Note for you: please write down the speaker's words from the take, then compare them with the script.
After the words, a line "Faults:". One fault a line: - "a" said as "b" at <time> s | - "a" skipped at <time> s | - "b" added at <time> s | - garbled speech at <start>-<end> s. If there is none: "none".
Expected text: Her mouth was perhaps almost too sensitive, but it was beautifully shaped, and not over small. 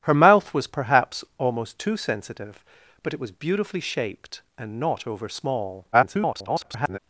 Her mouth was perhaps almost too sensitive, but it was beautifully shaped, and not over small. [garbled]
Faults:
- garbled speech at 5.9-7.0 s